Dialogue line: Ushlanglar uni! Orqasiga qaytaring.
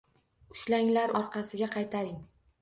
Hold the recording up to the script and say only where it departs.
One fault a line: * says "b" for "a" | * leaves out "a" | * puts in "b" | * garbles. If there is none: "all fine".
* leaves out "uni"